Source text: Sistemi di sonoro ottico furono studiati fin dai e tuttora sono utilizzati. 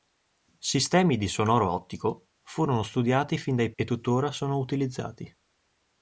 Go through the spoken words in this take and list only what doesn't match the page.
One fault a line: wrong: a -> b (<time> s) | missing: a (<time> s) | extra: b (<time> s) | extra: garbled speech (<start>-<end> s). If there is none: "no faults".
no faults